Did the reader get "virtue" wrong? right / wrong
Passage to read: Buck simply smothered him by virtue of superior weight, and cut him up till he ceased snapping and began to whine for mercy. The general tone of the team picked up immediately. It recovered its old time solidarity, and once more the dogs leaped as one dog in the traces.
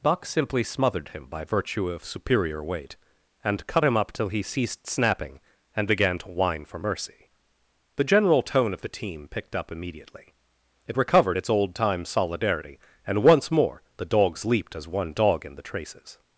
right